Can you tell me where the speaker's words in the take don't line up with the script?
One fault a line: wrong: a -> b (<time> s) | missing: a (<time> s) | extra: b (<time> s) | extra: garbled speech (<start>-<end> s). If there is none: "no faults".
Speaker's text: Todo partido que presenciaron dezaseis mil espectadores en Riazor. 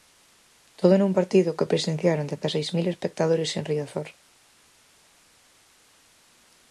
extra: nun (1.0 s)